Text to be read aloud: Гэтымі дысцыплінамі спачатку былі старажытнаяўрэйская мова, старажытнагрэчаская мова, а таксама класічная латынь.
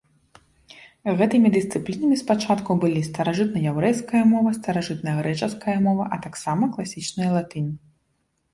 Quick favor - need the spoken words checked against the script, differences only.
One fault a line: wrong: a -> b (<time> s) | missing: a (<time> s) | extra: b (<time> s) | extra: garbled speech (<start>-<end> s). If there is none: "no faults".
no faults